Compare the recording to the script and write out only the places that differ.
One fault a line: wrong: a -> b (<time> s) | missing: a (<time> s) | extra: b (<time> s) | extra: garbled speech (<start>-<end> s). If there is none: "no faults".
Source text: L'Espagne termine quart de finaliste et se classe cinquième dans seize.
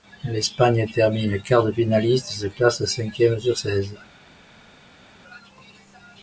wrong: dans -> sur (3.4 s)